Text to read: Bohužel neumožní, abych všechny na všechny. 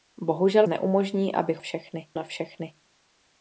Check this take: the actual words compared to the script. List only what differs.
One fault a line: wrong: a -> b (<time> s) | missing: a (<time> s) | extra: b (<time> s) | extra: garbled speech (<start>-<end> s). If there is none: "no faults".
no faults